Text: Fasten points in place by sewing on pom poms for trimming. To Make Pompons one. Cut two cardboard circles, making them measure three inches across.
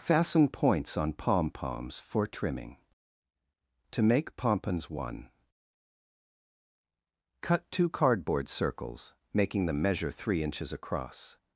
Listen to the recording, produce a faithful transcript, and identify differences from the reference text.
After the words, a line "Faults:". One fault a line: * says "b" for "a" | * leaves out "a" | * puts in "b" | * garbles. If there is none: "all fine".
Fasten points on pom poms for trimming. To Make Pompons one. Cut two cardboard circles, making them measure three inches across.
Faults:
* leaves out "in place by sewing"